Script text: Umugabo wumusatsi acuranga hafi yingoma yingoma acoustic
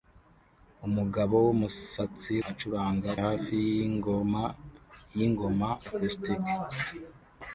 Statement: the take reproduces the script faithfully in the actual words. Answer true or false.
true